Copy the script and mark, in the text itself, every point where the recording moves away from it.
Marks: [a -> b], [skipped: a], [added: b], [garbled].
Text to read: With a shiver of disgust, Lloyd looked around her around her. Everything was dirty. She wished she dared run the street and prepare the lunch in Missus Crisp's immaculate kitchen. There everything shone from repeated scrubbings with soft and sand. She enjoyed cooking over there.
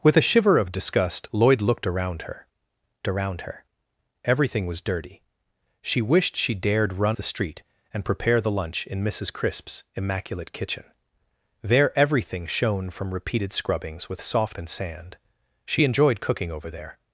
With a shiver of disgust, Lloyd looked around her around her. Everything was dirty. She wished she dared run the street and prepare the lunch in Missus Crisp's immaculate kitchen. There everything shone from repeated scrubbings with soft and sand. She enjoyed cooking over there.